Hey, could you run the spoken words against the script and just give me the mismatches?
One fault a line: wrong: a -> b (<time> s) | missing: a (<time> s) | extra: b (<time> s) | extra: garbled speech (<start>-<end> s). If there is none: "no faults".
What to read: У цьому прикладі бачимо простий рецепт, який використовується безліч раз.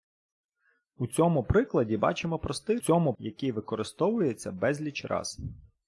wrong: рецепт -> цьому (2.8 s)